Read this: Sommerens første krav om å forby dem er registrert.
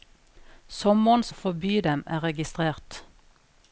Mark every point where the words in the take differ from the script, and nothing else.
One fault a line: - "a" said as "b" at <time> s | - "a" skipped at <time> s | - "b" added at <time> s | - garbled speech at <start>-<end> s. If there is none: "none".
- "første krav om" skipped at 1.3 s